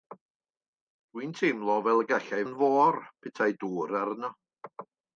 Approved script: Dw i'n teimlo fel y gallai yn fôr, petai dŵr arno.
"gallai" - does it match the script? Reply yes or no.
yes